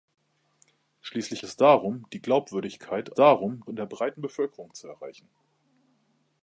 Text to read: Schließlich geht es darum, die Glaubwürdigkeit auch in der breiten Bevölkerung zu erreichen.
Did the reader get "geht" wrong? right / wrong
wrong